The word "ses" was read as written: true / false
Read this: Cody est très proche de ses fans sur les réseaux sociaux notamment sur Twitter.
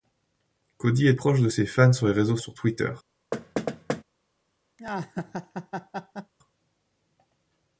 true